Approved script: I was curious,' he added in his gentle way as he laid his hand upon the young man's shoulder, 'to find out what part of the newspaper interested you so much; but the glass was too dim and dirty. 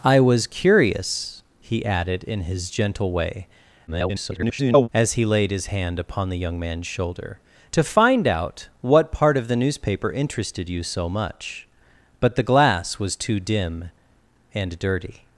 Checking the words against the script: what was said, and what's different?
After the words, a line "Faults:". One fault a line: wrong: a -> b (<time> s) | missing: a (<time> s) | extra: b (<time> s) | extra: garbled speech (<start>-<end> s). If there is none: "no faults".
I was curious,' he added in his gentle way [garbled] as he laid his hand upon the young man's shoulder, 'to find out what part of the newspaper interested you so much; but the glass was too dim and dirty.
Faults:
extra: garbled speech (3.9-4.9 s)